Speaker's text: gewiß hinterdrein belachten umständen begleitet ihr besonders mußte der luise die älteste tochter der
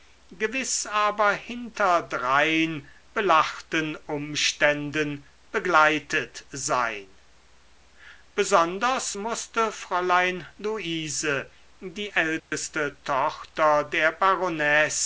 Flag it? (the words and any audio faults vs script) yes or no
yes